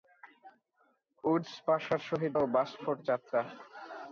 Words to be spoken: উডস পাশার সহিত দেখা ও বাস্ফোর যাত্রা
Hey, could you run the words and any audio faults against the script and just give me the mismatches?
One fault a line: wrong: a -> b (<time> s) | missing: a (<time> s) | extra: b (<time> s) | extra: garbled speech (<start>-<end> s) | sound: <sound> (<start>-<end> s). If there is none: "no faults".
missing: দেখা (2.3 s)